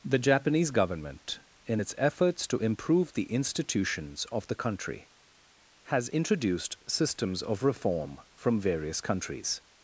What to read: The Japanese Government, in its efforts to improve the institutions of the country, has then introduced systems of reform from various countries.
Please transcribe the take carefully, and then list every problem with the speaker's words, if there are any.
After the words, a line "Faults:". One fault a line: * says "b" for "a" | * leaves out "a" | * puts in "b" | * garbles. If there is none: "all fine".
The Japanese Government, in its efforts to improve the institutions of the country, has introduced systems of reform from various countries.
Faults:
* leaves out "then"